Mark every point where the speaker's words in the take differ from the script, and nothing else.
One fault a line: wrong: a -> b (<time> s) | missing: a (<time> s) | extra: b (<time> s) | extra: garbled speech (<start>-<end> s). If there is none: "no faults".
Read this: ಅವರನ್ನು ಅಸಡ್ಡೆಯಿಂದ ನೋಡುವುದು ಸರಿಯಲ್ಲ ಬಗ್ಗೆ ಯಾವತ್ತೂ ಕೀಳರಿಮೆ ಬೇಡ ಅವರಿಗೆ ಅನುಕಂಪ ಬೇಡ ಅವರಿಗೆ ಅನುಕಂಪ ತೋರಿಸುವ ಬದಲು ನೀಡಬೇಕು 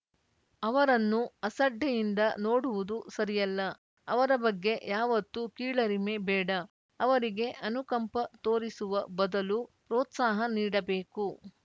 extra: ಅವರ (4.1 s)
missing: ಬೇಡ ಅವರಿಗೆ ಅನುಕಂಪ (8.2 s)
extra: ಪ್ರೋತ್ಸಾಹ (9.9 s)